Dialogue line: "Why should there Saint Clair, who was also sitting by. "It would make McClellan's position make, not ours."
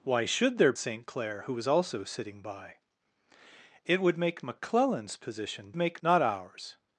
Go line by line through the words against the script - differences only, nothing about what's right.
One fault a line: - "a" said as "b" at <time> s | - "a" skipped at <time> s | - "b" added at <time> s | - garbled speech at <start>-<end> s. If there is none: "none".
none